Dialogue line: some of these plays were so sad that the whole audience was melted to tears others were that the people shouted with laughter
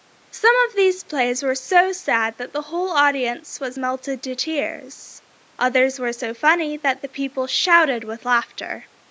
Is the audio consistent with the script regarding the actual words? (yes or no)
no